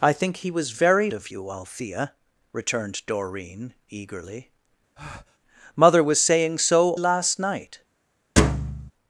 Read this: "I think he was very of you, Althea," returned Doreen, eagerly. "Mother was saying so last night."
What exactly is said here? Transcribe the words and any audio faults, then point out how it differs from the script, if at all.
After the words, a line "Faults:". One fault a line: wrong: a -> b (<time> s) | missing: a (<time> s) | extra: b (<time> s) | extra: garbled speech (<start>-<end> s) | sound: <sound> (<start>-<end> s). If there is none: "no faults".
"I think he was very of you, Althea," returned Doreen, eagerly. "Mother was saying so last night."
Faults:
sound: breath (5.0-5.4 s)
sound: thud (8.4-8.9 s)